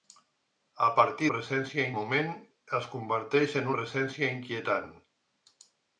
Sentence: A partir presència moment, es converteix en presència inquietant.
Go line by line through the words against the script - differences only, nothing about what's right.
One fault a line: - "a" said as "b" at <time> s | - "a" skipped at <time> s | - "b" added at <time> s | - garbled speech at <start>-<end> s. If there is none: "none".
none